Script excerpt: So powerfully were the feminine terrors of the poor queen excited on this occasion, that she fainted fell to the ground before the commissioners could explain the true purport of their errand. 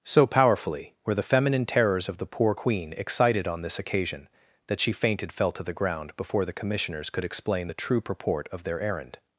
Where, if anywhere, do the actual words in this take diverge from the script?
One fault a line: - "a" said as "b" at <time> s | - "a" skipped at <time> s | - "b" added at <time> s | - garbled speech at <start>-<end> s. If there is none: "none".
none